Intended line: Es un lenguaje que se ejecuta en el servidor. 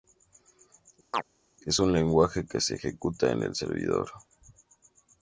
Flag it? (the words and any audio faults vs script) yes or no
yes